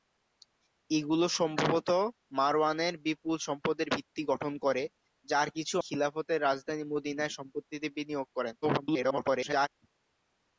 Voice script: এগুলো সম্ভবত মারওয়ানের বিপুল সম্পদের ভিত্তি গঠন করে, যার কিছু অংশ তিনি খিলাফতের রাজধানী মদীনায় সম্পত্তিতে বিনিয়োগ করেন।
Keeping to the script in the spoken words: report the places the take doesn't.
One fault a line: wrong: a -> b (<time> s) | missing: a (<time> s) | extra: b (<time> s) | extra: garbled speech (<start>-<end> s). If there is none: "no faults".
missing: অংশ তিনি (5.8 s)
extra: garbled speech (8.6-9.7 s)